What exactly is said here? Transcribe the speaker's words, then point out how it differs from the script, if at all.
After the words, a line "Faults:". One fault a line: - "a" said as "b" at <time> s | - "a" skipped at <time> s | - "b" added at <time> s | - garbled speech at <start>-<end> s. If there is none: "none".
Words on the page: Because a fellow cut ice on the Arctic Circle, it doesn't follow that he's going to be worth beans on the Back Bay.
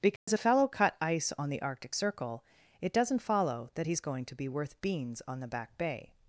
Because a fellow cut ice on the Arctic Circle, it doesn't follow that he's going to be worth beans on the Back Bay.
Faults:
none